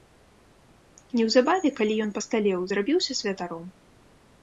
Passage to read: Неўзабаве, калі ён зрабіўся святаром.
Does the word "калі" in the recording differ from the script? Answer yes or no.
no